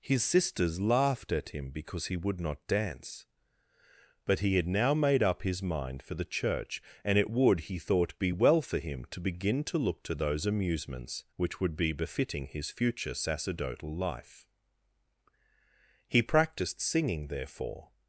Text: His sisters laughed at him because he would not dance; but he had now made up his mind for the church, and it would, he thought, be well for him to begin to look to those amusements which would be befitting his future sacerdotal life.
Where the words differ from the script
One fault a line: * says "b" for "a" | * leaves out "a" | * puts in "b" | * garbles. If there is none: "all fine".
* puts in "He practised singing therefore"